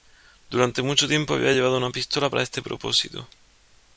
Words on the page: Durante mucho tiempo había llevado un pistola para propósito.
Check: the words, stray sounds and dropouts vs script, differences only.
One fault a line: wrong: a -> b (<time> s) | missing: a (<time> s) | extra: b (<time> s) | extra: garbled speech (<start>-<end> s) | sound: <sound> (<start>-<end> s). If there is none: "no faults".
wrong: un -> una (1.8 s)
extra: este (2.4 s)